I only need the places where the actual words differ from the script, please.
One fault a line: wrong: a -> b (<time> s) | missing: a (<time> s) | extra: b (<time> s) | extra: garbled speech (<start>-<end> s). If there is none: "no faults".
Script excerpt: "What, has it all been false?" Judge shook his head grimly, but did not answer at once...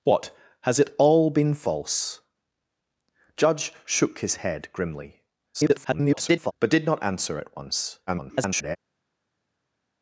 extra: garbled speech (5.5-6.5 s)
extra: garbled speech (8.1-8.8 s)